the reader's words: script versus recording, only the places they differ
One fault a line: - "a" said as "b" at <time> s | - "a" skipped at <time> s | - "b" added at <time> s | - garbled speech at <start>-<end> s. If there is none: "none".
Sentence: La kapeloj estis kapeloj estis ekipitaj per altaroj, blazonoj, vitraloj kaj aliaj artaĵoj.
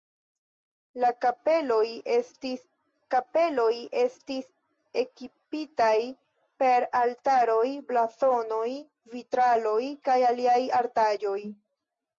none